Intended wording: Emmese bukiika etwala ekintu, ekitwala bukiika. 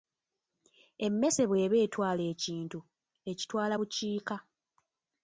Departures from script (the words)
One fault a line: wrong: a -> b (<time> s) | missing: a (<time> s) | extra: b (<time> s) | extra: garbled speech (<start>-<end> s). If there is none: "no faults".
wrong: bukiika -> bw'eba (1.5 s)